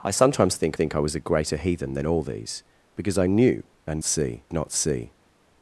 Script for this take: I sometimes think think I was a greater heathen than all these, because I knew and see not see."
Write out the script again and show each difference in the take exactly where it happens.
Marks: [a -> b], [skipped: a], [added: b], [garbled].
I sometimes think think I was a greater heathen than all these, because I knew and see not see."